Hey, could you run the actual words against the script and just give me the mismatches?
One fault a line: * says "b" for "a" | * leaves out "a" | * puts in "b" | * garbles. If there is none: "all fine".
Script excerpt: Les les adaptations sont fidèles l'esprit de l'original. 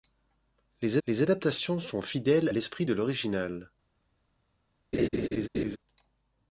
all fine